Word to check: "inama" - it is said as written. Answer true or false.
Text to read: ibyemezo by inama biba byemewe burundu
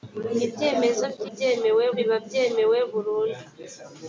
false